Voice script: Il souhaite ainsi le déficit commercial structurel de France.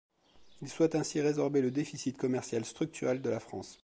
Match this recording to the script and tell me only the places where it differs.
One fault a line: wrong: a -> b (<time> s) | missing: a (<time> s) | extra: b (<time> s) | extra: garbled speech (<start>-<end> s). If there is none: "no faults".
extra: résorber (1.2 s)
extra: la (3.3 s)